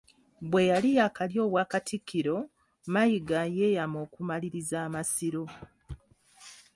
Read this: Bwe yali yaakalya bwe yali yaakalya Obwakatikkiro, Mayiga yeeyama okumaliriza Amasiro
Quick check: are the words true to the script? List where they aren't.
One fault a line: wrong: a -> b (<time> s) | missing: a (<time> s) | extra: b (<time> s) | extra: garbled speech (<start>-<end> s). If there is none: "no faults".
missing: bwe yali yaakalya (1.4 s)